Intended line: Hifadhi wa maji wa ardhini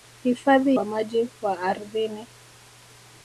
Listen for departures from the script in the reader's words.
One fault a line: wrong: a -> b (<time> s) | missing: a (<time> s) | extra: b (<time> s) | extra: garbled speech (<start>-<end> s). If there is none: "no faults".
no faults